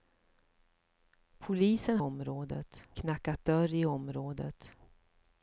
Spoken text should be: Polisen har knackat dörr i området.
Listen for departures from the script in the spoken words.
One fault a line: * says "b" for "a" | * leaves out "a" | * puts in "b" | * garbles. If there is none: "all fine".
* says "området" for "har"